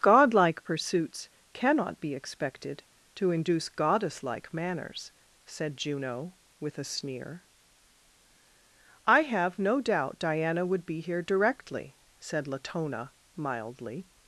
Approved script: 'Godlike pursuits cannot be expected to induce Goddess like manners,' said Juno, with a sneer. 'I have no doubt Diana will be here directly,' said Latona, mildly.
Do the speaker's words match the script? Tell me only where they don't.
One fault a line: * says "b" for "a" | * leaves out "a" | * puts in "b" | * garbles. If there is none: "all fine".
* says "would" for "will"